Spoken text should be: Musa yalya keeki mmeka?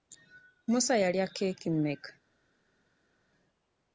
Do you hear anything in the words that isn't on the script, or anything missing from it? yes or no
no